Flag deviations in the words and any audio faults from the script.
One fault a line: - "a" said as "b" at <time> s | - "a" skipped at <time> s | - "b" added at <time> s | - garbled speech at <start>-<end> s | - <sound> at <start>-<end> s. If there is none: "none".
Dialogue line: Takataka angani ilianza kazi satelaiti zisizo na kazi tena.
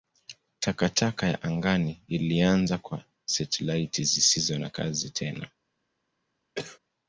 - "ya" added at 1.3 s
- "kazi" said as "kwa" at 2.8 s
- cough at 6.6-6.8 s